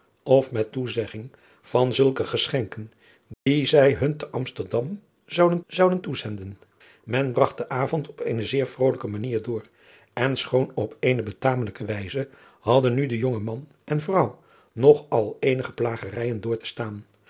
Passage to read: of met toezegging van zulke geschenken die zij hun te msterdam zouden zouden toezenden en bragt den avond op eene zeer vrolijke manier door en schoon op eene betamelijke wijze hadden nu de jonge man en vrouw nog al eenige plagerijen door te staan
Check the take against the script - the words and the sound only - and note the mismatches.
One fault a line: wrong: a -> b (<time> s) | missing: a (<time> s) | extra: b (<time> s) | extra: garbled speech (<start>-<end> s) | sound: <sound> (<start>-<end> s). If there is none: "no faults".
sound: dropout (3.3-3.5 s)